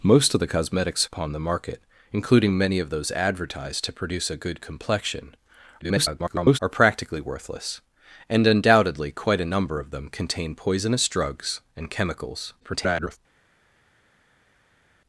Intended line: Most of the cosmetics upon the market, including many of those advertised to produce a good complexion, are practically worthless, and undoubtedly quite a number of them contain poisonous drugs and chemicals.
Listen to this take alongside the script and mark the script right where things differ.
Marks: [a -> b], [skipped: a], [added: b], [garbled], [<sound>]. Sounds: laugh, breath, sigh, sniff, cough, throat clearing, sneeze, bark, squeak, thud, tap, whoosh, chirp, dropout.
Most of the cosmetics upon the market, including many of those advertised to produce a good complexion, [garbled] are practically worthless, and undoubtedly quite a number of them contain poisonous drugs and chemicals. [garbled]